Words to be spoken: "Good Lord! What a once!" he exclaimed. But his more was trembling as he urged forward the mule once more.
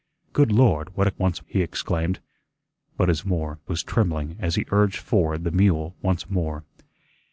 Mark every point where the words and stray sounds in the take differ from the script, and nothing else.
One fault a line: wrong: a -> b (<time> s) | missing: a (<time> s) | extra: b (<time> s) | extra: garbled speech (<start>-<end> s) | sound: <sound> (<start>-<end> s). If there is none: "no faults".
no faults